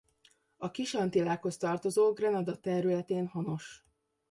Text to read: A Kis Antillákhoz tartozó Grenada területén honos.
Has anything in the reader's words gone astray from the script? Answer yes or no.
no